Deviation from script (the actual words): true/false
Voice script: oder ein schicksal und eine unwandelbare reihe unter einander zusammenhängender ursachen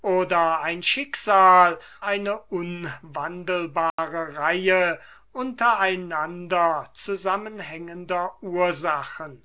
true